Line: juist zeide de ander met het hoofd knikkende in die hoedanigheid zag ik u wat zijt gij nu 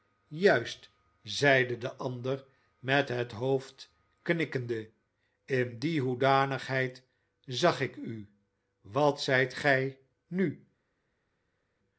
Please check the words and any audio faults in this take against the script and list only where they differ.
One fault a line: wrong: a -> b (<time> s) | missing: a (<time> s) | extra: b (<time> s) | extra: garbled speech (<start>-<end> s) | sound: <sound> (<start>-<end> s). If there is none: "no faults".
no faults